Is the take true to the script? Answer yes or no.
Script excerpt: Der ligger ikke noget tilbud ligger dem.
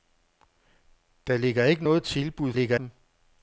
yes